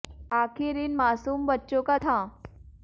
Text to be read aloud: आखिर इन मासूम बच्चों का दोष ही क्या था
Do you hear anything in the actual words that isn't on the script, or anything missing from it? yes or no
yes